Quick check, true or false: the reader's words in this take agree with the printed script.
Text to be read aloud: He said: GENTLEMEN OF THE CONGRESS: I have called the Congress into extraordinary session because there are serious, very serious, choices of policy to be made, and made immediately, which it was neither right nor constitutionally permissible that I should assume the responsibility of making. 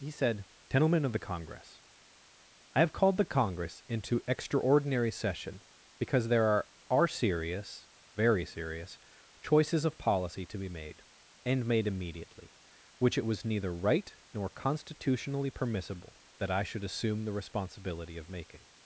false